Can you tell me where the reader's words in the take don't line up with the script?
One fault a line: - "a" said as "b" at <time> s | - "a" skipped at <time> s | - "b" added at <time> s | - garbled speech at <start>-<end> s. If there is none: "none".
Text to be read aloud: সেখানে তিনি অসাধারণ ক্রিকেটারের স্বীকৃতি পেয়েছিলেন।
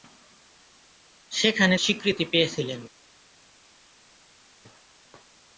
- "তিনি অসাধারণ ক্রিকেটারের" skipped at 1.8 s